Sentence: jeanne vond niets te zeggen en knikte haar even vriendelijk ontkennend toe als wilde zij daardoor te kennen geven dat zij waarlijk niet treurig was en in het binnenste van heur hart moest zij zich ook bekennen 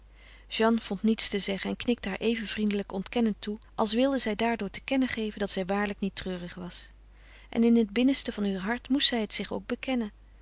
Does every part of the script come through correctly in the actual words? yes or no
no